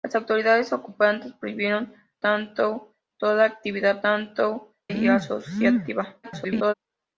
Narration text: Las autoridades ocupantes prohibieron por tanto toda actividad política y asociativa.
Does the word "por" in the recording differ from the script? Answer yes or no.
yes